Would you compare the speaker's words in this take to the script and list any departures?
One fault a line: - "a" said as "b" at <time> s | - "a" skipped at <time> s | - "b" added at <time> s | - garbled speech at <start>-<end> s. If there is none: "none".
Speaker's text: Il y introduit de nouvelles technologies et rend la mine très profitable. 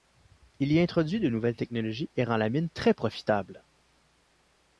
none